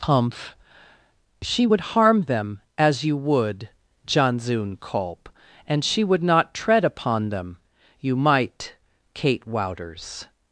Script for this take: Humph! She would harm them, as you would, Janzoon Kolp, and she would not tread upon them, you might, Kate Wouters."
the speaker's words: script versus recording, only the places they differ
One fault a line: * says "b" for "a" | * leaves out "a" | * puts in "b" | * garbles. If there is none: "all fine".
all fine